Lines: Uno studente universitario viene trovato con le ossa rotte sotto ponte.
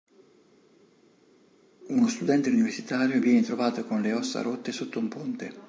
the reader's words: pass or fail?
fail